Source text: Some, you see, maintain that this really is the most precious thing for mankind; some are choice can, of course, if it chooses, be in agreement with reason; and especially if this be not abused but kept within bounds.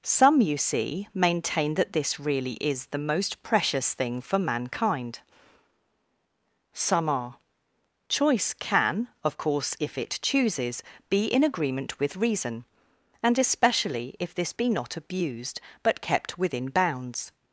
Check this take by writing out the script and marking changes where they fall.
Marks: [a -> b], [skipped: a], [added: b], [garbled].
Some, you see, maintain that this really is the most precious thing for mankind; some are choice can, of course, if it chooses, be in agreement with reason; and especially if this be not abused but kept within bounds.